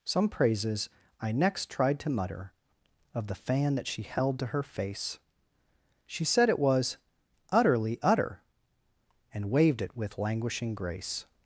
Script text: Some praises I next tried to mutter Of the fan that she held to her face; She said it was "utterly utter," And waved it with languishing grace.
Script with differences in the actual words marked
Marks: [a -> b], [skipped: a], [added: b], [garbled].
Some praises I next tried to mutter Of the fan that she held to her face; She said it was "utterly utter," And waved it with languishing grace.